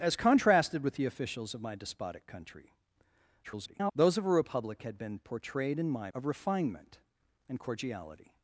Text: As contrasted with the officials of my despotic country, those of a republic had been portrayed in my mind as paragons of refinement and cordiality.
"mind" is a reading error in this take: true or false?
true